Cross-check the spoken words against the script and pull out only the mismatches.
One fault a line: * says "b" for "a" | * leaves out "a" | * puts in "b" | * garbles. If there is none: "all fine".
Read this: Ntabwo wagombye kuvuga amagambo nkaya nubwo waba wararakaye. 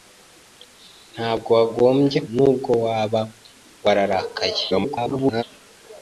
* leaves out "kuvuga amagambo nkaya"
* garbles